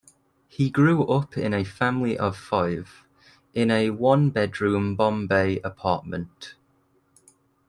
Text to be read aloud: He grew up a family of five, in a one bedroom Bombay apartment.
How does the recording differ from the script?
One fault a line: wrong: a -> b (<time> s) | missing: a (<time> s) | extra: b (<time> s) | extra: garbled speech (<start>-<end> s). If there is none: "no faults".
extra: in (1.4 s)